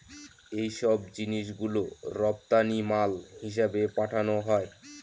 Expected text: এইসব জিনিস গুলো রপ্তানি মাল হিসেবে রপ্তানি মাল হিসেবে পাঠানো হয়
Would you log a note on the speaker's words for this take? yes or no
yes